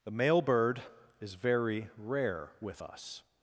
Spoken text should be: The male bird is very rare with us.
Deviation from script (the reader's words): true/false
false